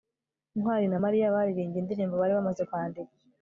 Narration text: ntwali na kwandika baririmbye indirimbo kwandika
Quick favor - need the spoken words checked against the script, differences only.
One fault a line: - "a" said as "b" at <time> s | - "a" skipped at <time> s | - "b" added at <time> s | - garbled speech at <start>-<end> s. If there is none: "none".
- "kwandika" said as "mariya" at 1.0 s
- "bari bamaze" added at 2.2 s